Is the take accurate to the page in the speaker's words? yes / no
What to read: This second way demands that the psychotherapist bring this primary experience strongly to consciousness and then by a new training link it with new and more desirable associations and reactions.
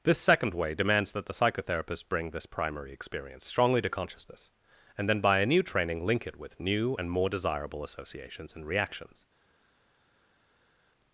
yes